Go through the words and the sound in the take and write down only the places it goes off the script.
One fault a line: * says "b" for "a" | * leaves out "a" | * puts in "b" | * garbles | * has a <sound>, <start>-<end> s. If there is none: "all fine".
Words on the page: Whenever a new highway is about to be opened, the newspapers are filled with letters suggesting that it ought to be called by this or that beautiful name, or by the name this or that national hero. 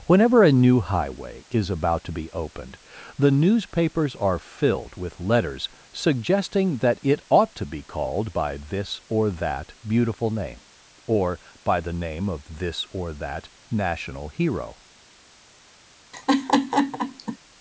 * puts in "of"
* has a laugh, 16.1-17.4 s